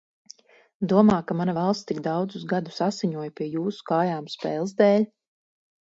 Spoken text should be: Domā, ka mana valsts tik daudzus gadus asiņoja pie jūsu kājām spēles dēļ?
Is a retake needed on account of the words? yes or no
no